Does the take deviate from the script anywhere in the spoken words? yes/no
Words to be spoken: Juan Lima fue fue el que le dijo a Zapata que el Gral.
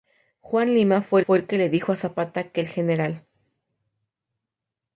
no